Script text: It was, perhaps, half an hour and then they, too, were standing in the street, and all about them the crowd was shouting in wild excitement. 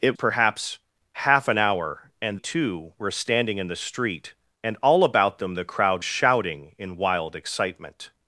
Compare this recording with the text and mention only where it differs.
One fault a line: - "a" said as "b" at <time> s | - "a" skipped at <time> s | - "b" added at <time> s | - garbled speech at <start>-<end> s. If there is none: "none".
- "was" skipped at 0.2 s
- "then they" skipped at 2.4 s
- "was" skipped at 6.0 s